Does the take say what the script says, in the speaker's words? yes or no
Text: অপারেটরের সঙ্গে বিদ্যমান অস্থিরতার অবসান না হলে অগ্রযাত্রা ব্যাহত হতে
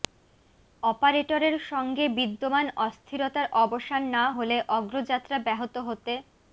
yes